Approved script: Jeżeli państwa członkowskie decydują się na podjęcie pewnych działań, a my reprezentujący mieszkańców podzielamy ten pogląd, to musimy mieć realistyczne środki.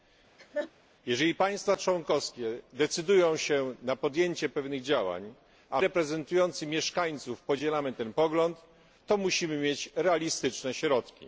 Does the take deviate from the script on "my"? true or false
true